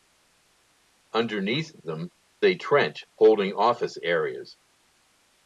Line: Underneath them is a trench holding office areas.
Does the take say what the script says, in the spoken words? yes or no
no